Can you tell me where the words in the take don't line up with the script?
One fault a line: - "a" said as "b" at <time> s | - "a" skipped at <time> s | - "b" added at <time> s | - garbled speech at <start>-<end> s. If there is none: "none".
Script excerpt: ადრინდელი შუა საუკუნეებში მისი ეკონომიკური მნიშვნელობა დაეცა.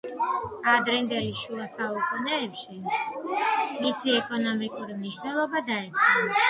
none